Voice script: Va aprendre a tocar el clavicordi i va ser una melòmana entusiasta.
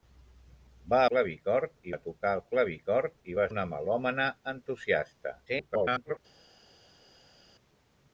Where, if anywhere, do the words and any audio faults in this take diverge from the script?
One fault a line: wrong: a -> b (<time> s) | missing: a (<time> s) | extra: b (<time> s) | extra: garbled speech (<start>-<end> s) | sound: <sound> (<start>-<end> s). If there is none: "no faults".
wrong: aprendre -> clavicordi (1.1 s)
missing: ser (3.5 s)
extra: garbled speech (5.5-6.2 s)